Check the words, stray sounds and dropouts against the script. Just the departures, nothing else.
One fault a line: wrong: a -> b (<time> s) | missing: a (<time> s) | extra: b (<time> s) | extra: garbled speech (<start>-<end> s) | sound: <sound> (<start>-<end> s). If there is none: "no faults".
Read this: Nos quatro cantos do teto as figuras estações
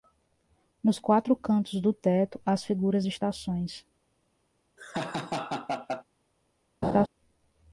sound: laugh (4.8-6.0 s)
sound: laugh (6.8-7.1 s)